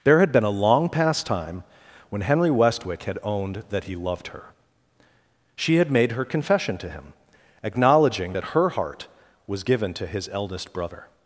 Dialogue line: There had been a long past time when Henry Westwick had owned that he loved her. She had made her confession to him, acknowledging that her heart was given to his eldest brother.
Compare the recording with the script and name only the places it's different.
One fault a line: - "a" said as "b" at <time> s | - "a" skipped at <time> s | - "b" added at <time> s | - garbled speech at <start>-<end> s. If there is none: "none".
none